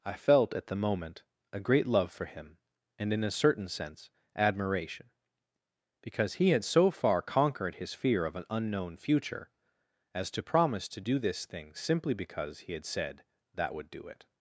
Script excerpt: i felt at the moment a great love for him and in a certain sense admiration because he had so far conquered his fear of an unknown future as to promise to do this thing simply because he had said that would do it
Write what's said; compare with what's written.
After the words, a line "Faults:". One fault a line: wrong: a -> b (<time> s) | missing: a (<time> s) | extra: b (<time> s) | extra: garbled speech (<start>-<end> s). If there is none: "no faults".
i felt at the moment a great love for him and in a certain sense admiration because he had so far conquered his fear of an unknown future as to promise to do this thing simply because he had said that would do it
Faults:
no faults